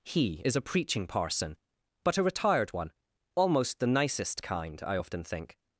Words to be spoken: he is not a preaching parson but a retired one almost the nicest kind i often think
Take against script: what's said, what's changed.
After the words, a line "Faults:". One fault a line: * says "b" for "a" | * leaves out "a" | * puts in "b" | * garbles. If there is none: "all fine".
he is a preaching parson but a retired one almost the nicest kind i often think
Faults:
* leaves out "not"